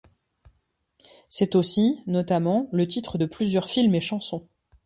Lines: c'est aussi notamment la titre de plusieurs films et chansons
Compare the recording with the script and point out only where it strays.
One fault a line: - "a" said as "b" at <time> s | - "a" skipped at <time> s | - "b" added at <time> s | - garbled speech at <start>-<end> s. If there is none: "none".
- "la" said as "le" at 2.7 s